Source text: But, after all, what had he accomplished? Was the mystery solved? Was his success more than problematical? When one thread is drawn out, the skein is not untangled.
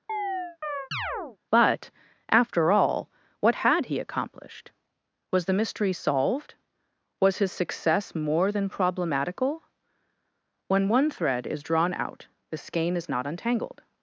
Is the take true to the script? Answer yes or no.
yes